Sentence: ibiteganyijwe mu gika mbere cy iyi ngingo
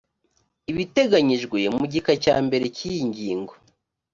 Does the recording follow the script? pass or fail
fail